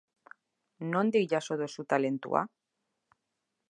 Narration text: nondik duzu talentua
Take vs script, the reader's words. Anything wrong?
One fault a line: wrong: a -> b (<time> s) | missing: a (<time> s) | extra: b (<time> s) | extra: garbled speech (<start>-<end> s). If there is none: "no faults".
extra: jaso (1.3 s)